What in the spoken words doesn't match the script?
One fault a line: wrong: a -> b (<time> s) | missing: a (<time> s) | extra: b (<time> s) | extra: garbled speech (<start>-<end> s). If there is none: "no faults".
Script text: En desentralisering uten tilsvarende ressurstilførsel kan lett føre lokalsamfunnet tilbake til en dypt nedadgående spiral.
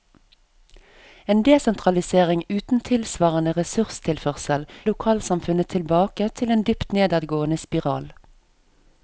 missing: kan lett føre (4.7 s)